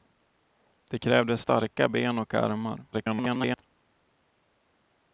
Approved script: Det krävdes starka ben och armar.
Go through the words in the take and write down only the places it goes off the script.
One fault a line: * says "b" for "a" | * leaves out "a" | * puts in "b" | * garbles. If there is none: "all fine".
* garbles